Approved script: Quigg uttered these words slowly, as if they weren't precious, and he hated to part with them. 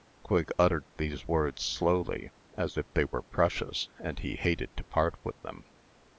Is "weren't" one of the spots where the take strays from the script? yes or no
yes